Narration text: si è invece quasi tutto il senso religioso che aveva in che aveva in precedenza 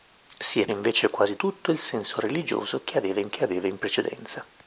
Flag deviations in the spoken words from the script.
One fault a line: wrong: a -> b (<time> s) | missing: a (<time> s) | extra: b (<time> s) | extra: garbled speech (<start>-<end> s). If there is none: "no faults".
no faults